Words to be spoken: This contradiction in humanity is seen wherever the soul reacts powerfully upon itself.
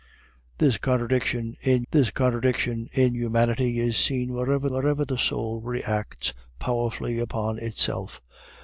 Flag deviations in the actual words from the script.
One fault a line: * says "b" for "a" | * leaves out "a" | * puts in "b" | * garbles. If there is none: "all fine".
* puts in "this contradiction in"
* puts in "wherever"